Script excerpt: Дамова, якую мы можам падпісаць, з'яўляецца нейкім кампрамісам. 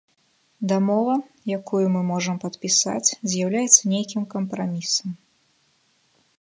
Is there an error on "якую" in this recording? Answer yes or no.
no